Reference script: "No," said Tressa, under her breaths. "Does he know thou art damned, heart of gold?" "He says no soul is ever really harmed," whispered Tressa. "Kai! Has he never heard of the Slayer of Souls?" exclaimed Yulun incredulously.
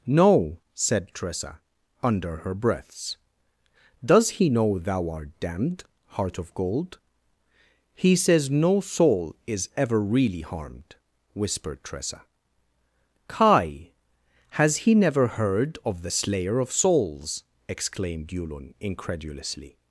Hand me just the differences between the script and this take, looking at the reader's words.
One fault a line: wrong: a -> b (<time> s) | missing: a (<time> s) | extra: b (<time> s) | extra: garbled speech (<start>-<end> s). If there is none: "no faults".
no faults